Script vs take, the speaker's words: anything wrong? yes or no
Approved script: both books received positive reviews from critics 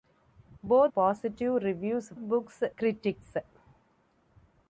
yes